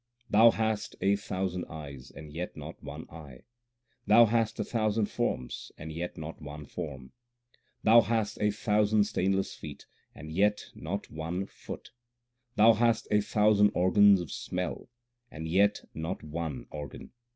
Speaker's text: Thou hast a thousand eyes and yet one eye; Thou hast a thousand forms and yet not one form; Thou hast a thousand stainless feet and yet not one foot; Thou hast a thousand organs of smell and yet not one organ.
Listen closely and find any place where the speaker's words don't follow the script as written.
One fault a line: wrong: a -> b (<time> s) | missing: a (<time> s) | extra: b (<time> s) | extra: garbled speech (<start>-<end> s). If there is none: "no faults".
extra: not (2.5 s)